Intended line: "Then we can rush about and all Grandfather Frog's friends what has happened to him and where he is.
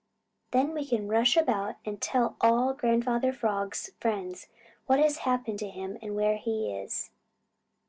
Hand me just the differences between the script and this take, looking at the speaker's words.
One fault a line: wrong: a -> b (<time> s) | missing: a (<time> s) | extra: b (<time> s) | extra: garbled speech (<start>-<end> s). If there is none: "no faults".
extra: tell (2.0 s)